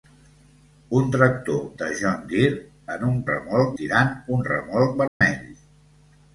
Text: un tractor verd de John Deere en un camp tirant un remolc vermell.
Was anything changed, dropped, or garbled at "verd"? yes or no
yes